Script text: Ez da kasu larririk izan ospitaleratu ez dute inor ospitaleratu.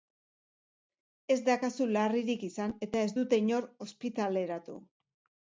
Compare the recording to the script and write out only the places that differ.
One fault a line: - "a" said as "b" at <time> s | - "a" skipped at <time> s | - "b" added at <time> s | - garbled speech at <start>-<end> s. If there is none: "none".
- "ospitaleratu" said as "eta" at 2.9 s